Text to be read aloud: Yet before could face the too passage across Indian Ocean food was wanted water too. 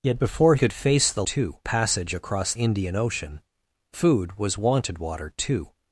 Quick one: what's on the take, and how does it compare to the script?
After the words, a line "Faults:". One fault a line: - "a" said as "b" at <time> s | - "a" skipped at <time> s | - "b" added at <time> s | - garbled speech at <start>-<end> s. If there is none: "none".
Yet before could face the too passage across Indian Ocean food was wanted water too.
Faults:
none